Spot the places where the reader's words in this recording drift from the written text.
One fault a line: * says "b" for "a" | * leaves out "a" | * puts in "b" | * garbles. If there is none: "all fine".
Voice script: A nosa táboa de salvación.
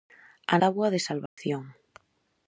* leaves out "nosa"